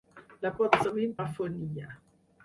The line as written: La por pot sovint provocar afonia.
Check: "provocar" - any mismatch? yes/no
yes